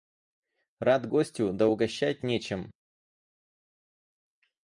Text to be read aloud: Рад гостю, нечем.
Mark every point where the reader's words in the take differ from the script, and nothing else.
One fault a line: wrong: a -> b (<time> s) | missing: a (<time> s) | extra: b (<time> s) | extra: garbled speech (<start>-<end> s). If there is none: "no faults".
extra: да угощать (1.5 s)